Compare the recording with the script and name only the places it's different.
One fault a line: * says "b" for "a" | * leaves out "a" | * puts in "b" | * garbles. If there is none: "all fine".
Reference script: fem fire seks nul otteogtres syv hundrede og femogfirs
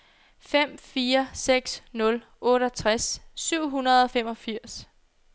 all fine